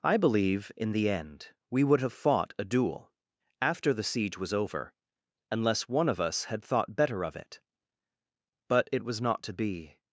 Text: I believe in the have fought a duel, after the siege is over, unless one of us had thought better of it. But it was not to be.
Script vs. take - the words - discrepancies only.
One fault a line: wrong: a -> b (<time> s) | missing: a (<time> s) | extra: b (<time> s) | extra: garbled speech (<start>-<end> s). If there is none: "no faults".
extra: end we would (1.1 s)
wrong: is -> was (4.4 s)